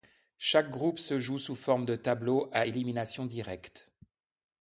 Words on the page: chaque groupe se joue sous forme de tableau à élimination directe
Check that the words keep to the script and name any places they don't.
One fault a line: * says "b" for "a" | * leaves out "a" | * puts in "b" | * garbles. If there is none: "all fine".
all fine